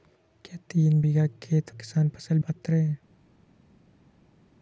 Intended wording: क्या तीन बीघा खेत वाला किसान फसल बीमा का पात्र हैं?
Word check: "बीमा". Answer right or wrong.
wrong